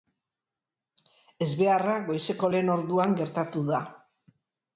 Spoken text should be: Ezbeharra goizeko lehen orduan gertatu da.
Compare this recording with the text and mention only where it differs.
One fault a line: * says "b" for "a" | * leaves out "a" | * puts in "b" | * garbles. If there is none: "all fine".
all fine